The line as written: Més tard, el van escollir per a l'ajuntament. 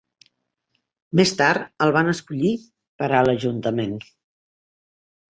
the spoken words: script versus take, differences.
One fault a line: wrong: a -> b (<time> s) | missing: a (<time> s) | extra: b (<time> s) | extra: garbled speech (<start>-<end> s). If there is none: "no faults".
no faults